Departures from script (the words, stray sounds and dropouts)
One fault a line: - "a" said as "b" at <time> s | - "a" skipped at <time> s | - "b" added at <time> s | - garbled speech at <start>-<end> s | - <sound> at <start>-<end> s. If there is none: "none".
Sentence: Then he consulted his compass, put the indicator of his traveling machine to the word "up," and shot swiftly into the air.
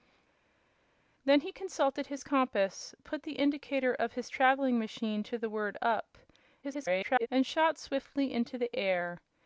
- garbled speech at 6.6-7.3 s